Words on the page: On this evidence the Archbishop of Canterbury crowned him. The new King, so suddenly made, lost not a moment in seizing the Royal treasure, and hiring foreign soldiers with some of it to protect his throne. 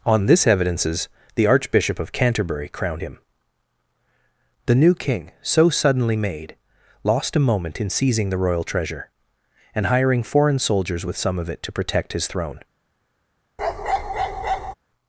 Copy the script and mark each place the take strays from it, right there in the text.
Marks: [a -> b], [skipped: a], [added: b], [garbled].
On this [evidence -> evidences] the Archbishop of Canterbury crowned him. The new King, so suddenly made, lost [skipped: not] a moment in seizing the Royal treasure, and hiring foreign soldiers with some of it to protect his throne.